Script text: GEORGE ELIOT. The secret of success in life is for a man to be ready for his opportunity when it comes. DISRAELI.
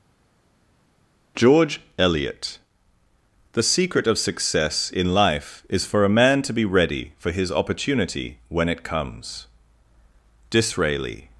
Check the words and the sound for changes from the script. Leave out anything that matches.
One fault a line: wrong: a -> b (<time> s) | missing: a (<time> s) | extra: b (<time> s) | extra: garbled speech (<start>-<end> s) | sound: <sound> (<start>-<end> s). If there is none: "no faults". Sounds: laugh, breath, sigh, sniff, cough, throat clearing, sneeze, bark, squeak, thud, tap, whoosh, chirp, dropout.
no faults